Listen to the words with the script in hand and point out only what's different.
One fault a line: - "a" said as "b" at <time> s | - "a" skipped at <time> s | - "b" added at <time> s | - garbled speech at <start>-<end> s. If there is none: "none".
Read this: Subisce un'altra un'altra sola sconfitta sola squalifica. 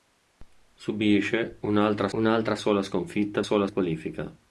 none